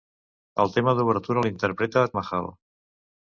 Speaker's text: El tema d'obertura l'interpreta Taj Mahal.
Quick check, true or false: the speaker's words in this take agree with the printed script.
false